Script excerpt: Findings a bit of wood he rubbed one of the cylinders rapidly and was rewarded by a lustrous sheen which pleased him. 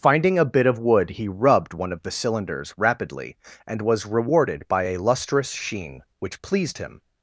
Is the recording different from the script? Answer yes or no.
yes